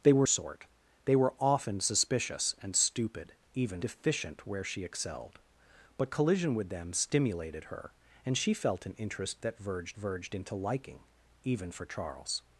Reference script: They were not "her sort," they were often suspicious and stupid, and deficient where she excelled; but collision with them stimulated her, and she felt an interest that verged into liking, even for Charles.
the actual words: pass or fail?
fail